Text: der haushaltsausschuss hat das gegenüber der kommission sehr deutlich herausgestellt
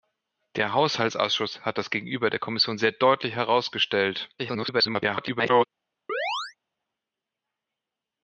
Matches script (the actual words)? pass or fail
fail